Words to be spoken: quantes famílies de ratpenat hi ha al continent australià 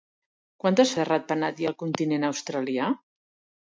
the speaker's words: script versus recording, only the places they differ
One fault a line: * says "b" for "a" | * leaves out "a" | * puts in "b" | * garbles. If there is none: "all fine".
* leaves out "famílies"